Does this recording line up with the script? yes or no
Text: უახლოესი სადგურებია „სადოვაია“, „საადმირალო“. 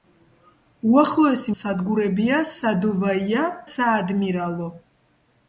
yes